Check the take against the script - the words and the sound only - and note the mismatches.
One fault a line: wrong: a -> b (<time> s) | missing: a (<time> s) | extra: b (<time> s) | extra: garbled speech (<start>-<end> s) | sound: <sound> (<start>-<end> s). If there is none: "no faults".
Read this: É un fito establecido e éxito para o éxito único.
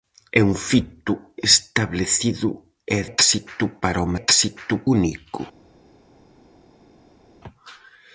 no faults